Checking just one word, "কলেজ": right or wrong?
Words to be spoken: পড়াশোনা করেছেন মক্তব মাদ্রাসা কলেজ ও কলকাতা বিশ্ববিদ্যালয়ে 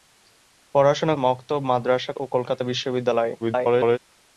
wrong